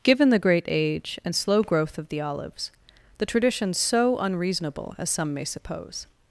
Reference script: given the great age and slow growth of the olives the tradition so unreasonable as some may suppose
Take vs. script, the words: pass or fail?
pass